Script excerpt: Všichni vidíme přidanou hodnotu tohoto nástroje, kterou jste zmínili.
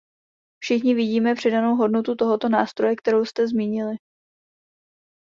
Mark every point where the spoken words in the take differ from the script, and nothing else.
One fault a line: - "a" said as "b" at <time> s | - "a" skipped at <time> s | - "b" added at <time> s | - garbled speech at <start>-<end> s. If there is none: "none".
none